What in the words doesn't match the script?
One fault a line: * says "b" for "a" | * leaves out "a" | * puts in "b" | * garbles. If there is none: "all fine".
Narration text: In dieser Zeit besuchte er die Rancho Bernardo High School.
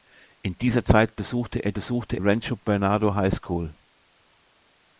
* says "besuchte" for "die"